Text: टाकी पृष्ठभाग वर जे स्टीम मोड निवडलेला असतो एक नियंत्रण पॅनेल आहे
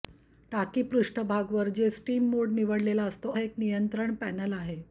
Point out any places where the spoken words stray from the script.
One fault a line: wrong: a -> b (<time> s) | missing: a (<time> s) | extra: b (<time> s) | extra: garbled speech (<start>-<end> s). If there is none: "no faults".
no faults